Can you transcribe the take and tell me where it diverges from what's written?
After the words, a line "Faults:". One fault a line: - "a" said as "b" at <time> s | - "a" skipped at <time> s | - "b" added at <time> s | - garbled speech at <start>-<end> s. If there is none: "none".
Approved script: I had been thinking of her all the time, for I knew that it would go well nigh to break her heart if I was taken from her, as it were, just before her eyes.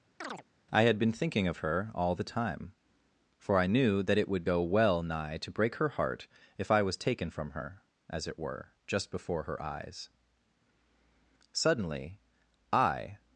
I had been thinking of her all the time, for I knew that it would go well nigh to break her heart if I was taken from her, as it were, just before her eyes. Suddenly, I
Faults:
- "Suddenly I" added at 11.5 s